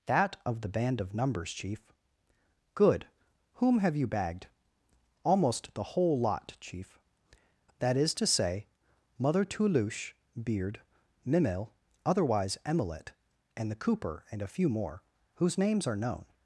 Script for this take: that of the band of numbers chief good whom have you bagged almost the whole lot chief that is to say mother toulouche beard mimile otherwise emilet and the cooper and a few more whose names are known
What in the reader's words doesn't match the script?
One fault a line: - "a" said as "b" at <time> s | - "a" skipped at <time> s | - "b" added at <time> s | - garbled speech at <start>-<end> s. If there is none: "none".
none